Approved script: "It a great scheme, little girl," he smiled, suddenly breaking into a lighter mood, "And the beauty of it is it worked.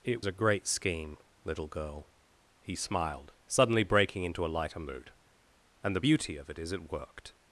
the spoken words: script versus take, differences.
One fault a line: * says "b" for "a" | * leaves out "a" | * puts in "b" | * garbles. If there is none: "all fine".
all fine